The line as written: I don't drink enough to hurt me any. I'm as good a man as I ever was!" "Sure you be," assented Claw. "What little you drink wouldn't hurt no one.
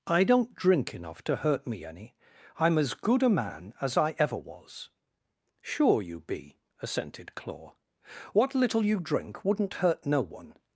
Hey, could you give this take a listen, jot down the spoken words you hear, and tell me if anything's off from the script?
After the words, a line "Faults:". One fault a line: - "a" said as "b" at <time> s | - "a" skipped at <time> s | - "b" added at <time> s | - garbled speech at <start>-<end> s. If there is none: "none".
I don't drink enough to hurt me any. I'm as good a man as I ever was!" "Sure you be," assented Claw. "What little you drink wouldn't hurt no one.
Faults:
none